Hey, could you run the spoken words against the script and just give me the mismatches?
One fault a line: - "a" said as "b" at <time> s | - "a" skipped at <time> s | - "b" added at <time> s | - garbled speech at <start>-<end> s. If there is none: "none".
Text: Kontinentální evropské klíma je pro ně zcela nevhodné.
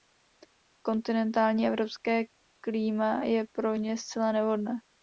none